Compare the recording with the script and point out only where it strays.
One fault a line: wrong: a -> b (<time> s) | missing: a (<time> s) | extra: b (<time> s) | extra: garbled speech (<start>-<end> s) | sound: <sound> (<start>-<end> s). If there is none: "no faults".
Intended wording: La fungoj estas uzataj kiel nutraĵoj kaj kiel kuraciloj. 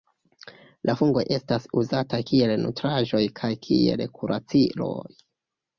no faults